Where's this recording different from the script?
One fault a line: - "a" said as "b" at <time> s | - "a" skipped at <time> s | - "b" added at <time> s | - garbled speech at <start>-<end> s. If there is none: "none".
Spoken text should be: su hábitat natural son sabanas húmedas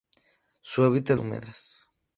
- "natural son sabanas" skipped at 1.2 s